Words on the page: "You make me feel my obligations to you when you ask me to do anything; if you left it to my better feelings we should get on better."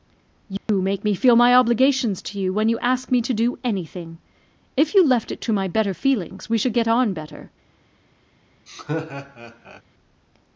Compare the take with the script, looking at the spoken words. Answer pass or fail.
pass